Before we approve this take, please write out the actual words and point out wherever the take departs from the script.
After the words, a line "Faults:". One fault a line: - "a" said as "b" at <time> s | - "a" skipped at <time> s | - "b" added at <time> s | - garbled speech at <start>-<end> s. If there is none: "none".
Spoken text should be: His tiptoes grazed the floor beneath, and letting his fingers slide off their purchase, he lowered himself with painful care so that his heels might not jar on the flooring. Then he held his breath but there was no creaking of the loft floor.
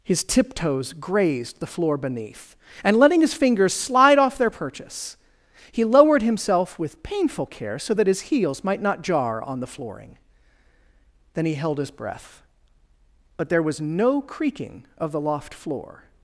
His tiptoes grazed the floor beneath, and letting his fingers slide off their purchase, he lowered himself with painful care so that his heels might not jar on the flooring. Then he held his breath but there was no creaking of the loft floor.
Faults:
none